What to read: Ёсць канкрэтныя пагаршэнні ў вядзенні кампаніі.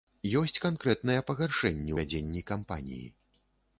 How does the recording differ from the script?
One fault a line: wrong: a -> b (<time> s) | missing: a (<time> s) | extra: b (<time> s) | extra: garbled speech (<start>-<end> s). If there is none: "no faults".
missing: ў (1.9 s)